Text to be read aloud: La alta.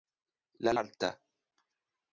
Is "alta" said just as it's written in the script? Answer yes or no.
yes